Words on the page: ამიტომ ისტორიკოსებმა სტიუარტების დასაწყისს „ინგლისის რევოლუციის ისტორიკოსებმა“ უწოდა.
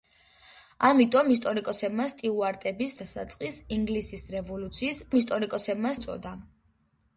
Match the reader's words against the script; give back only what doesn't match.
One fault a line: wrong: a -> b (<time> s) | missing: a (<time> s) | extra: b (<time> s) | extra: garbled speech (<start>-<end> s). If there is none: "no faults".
no faults